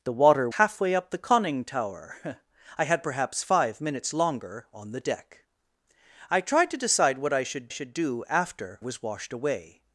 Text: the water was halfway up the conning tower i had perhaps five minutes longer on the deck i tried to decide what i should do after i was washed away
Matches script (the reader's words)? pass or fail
fail